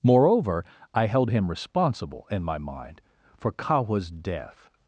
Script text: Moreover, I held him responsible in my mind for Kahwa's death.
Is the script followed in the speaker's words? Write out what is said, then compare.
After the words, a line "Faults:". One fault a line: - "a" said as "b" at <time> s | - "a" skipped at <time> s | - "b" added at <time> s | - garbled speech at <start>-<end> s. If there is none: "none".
Moreover, I held him responsible in my mind for Kahwa's death.
Faults:
none